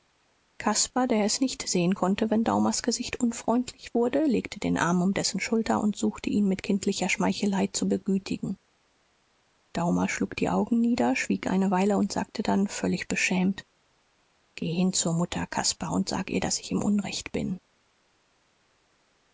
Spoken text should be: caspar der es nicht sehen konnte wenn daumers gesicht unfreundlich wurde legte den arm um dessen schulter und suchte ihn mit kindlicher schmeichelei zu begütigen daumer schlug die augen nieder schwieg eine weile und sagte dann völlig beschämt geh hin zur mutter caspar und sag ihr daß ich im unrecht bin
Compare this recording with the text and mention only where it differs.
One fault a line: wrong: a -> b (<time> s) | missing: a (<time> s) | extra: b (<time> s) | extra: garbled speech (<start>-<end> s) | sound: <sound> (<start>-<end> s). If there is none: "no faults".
no faults